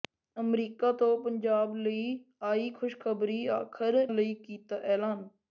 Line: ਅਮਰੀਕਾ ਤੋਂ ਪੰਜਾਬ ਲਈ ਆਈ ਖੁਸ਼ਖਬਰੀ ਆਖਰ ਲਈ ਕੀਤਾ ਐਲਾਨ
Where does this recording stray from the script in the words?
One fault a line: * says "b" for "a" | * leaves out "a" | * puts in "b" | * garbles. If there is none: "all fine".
all fine